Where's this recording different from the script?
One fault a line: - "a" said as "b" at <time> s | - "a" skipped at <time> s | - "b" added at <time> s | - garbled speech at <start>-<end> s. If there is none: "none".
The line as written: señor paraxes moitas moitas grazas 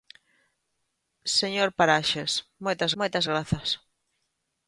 none